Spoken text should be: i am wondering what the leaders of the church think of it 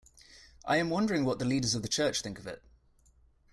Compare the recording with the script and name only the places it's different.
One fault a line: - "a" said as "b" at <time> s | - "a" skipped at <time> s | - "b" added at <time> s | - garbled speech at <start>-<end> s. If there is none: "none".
none